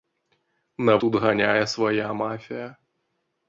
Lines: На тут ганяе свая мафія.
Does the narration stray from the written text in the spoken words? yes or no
no